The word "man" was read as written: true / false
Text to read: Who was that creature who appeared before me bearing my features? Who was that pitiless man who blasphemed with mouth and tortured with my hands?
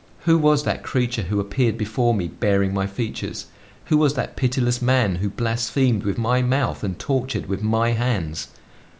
true